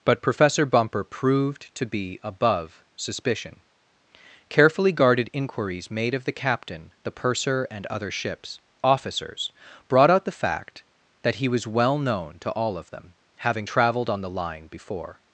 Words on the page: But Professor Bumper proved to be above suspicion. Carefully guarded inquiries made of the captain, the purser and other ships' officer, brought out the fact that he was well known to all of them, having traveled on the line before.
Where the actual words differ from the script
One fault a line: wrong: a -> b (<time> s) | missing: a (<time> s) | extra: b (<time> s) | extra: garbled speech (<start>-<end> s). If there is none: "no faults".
wrong: officer -> officers (8.8 s)